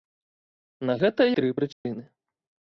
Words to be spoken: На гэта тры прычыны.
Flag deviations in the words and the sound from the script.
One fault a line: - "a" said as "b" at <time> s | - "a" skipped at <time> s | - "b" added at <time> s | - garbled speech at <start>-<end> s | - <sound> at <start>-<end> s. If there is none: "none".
- dropout at 1.7-1.9 s